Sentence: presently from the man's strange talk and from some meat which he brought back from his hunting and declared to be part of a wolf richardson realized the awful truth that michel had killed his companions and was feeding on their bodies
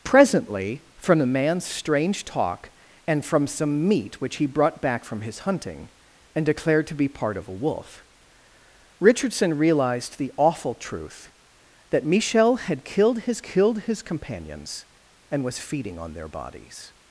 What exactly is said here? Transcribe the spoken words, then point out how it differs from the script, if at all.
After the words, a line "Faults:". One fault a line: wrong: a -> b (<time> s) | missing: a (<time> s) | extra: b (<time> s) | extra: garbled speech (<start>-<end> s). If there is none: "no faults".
presently from the man's strange talk and from some meat which he brought back from his hunting and declared to be part of a wolf richardson realized the awful truth that michel had killed his killed his companions and was feeding on their bodies
Faults:
extra: killed his (13.4 s)